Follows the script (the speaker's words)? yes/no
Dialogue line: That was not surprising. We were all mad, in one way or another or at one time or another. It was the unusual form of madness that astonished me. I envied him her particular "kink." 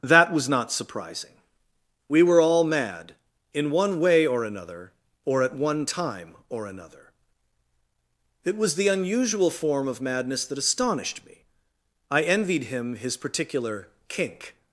no